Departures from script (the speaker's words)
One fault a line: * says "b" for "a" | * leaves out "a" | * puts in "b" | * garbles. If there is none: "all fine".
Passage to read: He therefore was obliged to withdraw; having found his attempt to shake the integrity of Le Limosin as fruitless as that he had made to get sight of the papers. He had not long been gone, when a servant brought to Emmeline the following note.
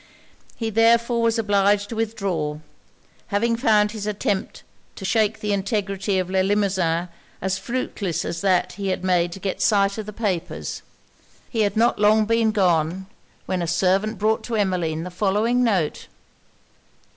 all fine